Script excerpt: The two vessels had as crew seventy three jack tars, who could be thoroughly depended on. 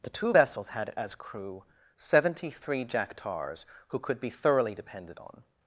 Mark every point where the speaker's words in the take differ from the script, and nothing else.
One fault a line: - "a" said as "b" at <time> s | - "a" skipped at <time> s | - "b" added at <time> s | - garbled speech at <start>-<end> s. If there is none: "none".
none